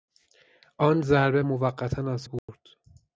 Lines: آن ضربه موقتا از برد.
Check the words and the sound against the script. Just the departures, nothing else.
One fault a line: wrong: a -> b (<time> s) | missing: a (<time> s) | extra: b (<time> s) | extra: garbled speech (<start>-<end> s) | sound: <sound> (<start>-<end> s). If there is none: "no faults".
sound: dropout (2.4-2.5 s)